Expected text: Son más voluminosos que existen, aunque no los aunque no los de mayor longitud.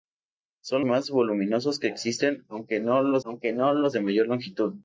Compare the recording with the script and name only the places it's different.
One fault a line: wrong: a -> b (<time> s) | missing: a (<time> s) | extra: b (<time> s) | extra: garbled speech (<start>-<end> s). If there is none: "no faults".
no faults